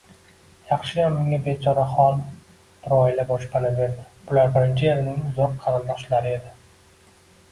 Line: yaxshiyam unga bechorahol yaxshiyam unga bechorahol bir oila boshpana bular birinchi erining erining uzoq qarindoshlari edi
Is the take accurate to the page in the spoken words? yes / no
no